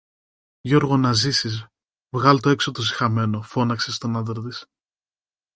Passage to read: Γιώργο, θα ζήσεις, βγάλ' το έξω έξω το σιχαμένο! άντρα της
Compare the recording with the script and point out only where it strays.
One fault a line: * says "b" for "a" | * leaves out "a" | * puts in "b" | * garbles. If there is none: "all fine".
* says "να" for "θα"
* leaves out "έξω"
* puts in "φώναξε στον"